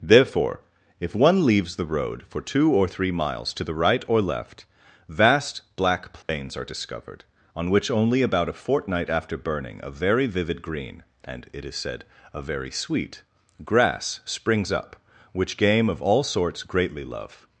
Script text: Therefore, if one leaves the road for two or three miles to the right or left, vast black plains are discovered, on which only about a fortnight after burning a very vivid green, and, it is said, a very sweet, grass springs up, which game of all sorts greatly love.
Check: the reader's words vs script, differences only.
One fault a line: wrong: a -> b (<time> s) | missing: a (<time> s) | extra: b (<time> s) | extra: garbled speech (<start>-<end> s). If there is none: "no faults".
no faults